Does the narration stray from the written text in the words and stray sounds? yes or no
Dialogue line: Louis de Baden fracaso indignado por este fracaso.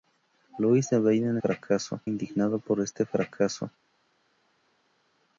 no